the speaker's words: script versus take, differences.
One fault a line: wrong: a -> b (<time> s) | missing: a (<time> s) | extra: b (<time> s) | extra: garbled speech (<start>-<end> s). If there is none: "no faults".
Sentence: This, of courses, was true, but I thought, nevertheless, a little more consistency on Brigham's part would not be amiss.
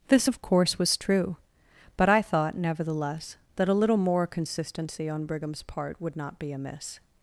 wrong: courses -> course (0.4 s)
extra: that (3.6 s)